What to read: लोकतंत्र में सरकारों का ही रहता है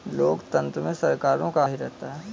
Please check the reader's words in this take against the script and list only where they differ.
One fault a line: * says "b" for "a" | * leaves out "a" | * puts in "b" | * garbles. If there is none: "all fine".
all fine